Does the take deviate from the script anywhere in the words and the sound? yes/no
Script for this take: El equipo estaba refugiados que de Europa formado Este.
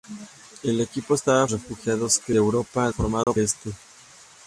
yes